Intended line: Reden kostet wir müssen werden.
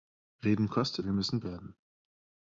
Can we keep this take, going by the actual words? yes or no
yes